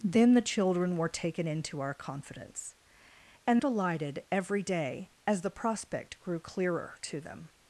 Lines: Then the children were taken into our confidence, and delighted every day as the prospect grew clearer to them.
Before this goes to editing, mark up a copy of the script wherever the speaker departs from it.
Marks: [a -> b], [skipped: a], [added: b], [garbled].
Then the children were taken into our confidence, and delighted every day as the prospect grew clearer to them.